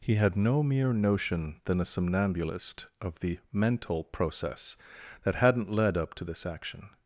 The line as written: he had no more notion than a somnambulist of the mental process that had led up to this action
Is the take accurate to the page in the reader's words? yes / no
no